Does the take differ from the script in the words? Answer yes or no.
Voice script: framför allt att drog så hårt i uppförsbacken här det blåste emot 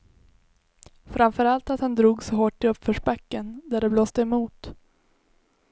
yes